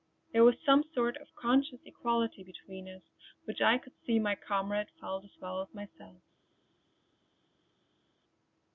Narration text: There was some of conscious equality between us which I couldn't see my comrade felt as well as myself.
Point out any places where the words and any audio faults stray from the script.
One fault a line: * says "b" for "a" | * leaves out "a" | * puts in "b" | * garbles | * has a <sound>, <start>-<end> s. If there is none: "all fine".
* puts in "sort"
* says "could" for "couldn't"